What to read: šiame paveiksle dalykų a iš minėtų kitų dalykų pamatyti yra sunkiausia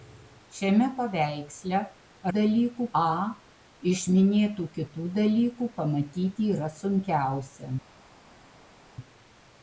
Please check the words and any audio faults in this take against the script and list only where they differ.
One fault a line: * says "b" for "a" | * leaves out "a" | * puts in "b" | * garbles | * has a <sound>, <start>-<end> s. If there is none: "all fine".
all fine